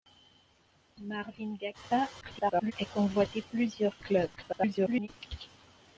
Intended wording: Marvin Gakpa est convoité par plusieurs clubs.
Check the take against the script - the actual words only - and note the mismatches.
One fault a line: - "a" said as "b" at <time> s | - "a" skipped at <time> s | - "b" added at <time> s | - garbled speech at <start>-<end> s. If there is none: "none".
- garbled speech at 2.2-2.7 s
- "par" skipped at 3.4 s
- garbled speech at 4.4-5.1 s